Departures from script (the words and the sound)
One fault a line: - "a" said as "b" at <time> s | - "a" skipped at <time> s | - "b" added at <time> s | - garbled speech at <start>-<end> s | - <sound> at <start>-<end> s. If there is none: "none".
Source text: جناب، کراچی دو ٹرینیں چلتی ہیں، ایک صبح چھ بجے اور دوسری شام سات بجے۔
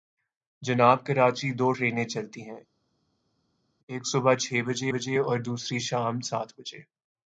- "بجے" added at 4.9 s